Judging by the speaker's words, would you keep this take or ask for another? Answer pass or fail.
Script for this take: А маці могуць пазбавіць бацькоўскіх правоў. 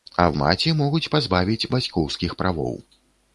pass